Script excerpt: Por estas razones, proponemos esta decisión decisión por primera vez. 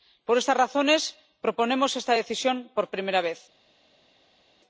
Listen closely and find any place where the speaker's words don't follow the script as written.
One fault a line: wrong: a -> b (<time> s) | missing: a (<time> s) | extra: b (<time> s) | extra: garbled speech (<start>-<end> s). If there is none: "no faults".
missing: decisión (2.6 s)